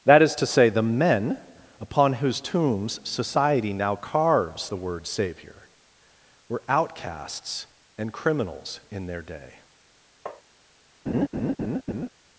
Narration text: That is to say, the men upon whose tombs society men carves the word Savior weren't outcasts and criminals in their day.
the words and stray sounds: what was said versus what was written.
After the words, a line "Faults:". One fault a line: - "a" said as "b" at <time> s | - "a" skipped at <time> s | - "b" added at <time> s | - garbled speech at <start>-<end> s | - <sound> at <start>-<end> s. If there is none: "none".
That is to say, the men upon whose tombs society now carves the word Savior were outcasts and criminals in their day.
Faults:
- "men" said as "now" at 3.7 s
- "weren't" said as "were" at 6.5 s
- tap at 10.3-10.4 s
- laugh at 11.1-12.1 s